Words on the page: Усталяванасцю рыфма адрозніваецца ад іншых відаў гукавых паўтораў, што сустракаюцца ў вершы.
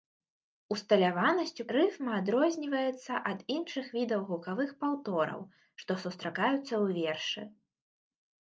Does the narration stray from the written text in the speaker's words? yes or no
no